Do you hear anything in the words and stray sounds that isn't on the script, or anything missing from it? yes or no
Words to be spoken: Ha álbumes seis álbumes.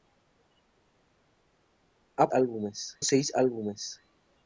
no